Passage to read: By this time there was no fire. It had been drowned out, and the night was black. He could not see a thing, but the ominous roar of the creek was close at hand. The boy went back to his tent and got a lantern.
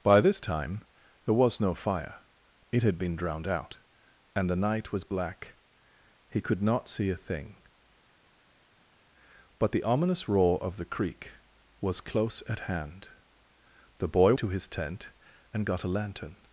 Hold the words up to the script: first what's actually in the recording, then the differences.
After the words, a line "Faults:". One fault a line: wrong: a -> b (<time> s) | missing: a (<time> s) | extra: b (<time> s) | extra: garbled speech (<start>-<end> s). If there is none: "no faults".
By this time there was no fire. It had been drowned out, and the night was black. He could not see a thing, but the ominous roar of the creek was close at hand. The boy to his tent and got a lantern.
Faults:
missing: went back (14.3 s)